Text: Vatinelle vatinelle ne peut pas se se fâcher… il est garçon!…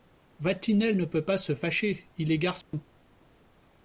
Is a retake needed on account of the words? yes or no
yes